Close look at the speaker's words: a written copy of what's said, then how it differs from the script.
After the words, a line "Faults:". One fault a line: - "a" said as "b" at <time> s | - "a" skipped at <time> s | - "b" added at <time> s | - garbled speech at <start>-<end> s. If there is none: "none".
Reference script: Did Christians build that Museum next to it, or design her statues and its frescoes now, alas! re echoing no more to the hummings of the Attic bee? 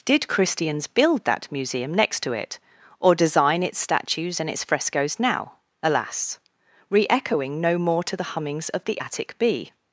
Did Christians build that Museum next to it, or design its statues and its frescoes now, alas! re echoing no more to the hummings of the Attic bee?
Faults:
- "her" said as "its" at 3.6 s